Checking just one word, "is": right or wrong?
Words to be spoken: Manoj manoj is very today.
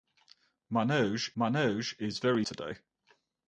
right